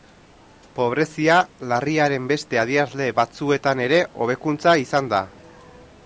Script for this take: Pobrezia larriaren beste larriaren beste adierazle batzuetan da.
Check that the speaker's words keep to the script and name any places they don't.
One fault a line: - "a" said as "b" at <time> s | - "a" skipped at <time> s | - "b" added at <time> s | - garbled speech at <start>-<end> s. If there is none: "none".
- "larriaren beste adierazle batzuetan" said as "adierazle batzuetan ere hobekuntza izan" at 2.6 s